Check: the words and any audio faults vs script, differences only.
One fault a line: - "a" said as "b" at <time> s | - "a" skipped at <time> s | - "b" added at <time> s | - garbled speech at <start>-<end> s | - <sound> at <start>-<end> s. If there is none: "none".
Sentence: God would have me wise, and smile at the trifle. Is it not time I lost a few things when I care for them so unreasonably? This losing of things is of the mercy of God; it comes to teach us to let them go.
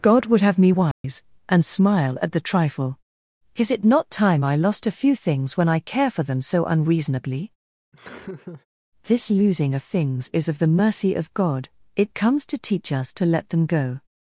- dropout at 0.9-1.0 s
- laugh at 7.9-8.7 s